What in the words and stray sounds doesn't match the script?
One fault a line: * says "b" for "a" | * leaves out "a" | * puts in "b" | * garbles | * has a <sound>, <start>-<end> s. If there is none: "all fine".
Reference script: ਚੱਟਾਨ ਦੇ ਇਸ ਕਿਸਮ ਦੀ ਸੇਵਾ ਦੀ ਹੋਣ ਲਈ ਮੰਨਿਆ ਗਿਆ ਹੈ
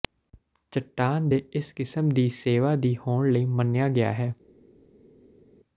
all fine